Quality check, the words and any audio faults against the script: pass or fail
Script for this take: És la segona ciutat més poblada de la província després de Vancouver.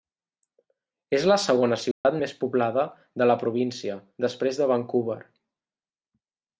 fail